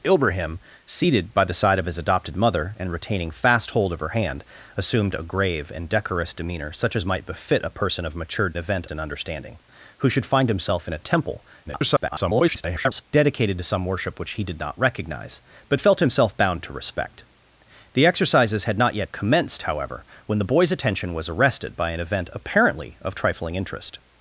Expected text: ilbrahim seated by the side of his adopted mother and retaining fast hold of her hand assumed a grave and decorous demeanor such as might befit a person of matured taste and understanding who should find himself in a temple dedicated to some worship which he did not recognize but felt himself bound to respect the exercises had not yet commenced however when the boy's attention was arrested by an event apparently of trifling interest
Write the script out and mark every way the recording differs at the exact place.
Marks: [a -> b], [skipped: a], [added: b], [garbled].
ilbrahim seated by the side of his adopted mother and retaining fast hold of her hand assumed a grave and decorous demeanor such as might befit a person of matured [taste -> event] and understanding who should find himself in a temple [garbled] dedicated to some worship which he did not recognize but felt himself bound to respect the exercises had not yet commenced however when the boy's attention was arrested by an event apparently of trifling interest